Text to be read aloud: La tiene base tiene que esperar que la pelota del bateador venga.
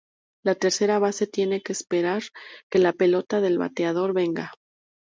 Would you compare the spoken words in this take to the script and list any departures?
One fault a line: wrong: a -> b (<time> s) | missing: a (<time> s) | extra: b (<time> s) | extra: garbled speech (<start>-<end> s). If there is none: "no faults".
wrong: tiene -> tercera (0.6 s)